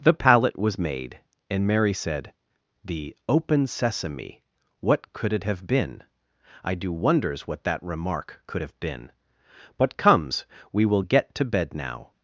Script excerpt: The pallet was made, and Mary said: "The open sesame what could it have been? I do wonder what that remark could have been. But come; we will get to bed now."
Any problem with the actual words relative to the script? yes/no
yes